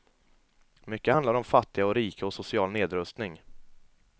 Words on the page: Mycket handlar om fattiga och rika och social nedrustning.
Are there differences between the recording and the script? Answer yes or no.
no